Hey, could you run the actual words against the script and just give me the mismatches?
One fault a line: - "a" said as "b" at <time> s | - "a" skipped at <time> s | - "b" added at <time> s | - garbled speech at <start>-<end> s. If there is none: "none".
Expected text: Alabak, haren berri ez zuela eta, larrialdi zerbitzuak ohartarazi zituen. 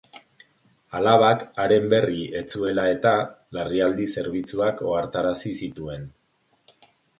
none